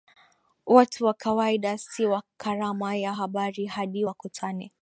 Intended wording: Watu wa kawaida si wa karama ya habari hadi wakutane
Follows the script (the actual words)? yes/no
yes